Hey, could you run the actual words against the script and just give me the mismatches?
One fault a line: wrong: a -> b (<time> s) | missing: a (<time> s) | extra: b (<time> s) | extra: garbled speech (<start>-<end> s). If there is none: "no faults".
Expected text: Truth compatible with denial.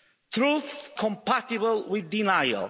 no faults